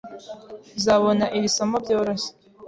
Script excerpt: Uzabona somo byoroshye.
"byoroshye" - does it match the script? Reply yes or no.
yes